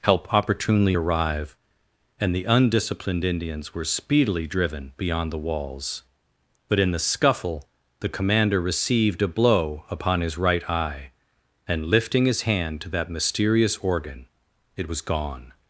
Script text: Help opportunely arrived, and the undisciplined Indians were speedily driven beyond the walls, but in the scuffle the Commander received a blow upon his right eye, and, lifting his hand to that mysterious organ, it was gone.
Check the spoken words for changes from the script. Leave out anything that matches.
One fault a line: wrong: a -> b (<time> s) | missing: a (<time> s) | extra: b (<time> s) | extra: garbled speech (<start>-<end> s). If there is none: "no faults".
wrong: arrived -> arrive (0.9 s)